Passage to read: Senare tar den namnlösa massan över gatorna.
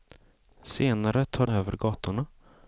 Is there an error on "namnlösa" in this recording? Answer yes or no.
yes